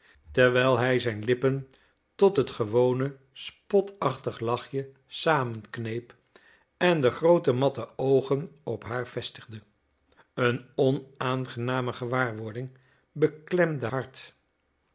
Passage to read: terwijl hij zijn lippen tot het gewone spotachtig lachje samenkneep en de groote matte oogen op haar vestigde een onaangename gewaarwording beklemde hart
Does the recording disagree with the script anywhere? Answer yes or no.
no